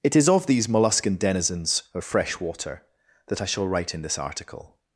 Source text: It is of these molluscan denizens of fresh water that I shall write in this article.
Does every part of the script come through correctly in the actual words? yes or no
yes